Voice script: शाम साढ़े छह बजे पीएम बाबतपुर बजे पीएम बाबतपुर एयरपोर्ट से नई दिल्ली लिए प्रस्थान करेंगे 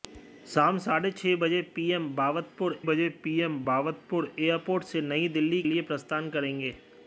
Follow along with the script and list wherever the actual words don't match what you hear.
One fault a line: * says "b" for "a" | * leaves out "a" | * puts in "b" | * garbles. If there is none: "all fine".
all fine